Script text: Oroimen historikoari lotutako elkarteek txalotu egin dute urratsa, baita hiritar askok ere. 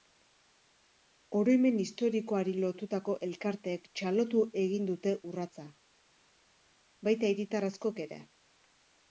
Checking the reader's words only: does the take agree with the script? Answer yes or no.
yes